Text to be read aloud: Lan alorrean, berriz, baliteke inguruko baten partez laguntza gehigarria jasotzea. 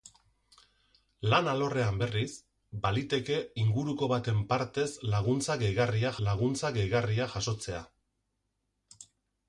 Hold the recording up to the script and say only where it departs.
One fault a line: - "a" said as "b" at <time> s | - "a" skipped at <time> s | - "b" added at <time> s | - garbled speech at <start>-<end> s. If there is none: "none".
- "laguntza gehigarria" added at 6.3 s